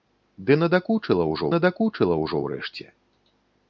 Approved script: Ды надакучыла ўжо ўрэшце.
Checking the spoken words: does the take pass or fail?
fail